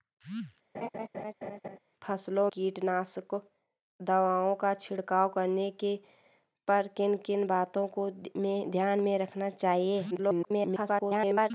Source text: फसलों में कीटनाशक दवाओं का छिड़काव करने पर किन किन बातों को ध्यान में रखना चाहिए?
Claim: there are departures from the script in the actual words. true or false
true